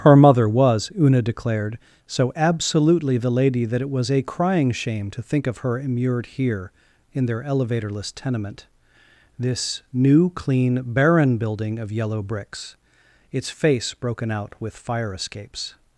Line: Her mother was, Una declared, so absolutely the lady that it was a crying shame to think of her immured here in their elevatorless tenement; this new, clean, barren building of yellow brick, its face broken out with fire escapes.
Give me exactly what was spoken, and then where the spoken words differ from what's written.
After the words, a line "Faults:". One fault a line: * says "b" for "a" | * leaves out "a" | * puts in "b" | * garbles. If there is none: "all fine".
Her mother was, Una declared, so absolutely the lady that it was a crying shame to think of her immured here in their elevatorless tenement; this new, clean, barren building of yellow bricks, its face broken out with fire escapes.
Faults:
* says "bricks" for "brick"